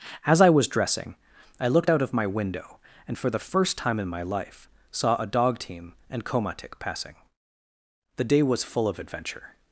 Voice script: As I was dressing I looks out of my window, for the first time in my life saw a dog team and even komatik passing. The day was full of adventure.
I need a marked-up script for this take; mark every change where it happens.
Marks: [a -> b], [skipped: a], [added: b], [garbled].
As I was dressing I [looks -> looked] out of my window, [added: and] for the first time in my life saw a dog team and [skipped: even] komatik passing. The day was full of adventure.